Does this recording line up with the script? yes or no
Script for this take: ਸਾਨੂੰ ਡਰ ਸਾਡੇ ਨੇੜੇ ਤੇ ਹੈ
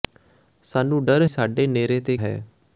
yes